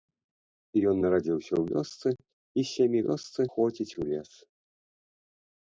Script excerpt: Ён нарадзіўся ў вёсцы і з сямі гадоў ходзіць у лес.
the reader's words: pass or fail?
fail